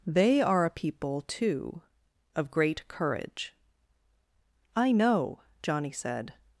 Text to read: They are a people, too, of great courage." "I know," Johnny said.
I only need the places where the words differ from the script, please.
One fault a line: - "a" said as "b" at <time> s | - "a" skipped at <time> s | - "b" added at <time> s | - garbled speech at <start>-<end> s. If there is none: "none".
none